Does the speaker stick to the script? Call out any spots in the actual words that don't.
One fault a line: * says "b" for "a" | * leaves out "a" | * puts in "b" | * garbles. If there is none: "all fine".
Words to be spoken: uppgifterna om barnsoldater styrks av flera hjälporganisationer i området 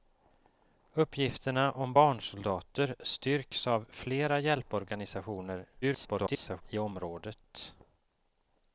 * garbles